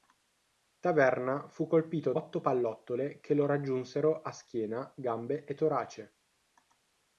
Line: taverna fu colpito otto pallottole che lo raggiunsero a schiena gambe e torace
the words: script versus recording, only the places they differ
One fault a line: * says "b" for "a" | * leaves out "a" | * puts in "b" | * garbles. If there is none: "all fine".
all fine